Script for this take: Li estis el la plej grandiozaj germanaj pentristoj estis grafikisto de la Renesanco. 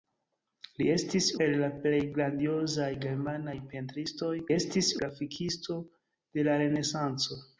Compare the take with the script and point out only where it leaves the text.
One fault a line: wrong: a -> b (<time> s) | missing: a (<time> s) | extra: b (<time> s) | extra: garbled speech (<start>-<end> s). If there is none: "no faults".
no faults